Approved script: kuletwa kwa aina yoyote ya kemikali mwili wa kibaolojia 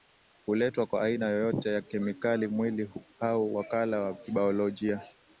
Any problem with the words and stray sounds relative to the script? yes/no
yes